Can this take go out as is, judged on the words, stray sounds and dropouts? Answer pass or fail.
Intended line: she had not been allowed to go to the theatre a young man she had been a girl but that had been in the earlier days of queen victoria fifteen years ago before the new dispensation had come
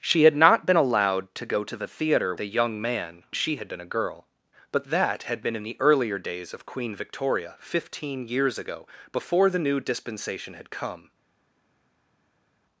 pass